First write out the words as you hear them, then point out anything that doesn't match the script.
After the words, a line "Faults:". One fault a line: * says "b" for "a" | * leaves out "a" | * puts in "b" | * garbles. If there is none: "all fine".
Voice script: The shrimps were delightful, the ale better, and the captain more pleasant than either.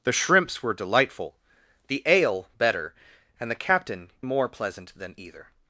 The shrimps were delightful, the ale better, and the captain more pleasant than either.
Faults:
all fine